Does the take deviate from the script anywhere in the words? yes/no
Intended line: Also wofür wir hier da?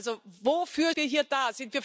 no